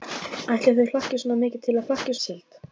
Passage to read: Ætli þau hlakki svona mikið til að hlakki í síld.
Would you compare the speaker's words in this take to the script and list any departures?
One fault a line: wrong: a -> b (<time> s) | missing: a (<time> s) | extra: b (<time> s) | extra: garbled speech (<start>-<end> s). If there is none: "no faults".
no faults